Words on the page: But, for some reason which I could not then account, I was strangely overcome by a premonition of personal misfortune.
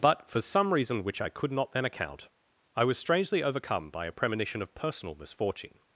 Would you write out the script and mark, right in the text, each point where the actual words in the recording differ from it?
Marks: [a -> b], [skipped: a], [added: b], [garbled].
But, for some reason which I could not then account, I was strangely overcome by a premonition of personal misfortune.